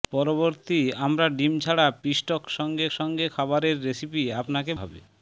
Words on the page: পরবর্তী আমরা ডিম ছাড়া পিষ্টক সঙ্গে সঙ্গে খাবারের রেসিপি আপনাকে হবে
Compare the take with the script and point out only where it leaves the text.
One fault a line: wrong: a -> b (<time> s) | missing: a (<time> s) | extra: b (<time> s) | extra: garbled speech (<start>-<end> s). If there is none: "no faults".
no faults